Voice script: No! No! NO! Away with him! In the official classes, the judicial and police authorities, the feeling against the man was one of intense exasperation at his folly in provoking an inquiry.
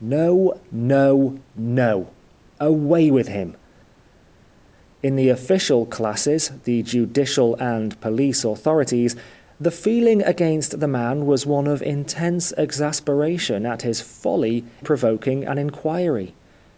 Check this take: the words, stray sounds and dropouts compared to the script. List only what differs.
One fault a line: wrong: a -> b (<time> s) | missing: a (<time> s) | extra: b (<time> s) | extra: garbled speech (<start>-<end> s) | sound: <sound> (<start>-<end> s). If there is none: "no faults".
missing: in (14.6 s)